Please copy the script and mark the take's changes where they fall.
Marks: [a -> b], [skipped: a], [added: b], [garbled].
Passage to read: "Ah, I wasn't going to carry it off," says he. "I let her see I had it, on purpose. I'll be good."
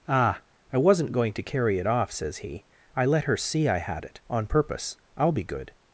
"Ah, I wasn't going to carry it off," says he. "I let her see I had it, on purpose. I'll be good."